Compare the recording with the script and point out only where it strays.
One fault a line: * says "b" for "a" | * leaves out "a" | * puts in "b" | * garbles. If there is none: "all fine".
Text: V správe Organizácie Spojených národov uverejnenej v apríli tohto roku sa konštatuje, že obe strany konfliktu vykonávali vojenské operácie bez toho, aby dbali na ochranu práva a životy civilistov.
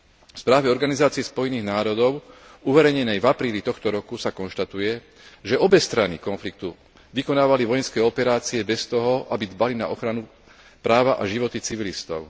all fine